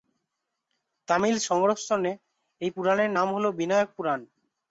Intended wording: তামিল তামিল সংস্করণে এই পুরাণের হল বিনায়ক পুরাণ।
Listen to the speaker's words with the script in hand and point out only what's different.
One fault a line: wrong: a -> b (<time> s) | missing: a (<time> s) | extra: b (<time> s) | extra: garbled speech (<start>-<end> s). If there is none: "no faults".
missing: তামিল (1.4 s)
extra: নাম (3.2 s)